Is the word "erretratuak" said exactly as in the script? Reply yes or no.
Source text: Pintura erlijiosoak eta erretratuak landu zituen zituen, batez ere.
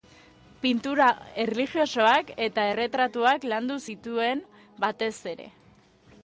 yes